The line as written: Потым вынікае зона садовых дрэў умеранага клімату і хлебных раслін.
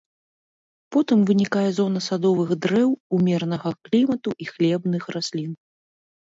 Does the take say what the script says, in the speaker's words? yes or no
yes